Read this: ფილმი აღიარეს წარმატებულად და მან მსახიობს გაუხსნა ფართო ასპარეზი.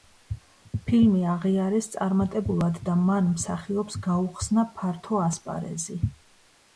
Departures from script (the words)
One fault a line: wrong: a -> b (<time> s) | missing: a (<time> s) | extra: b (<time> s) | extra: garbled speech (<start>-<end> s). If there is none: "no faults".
no faults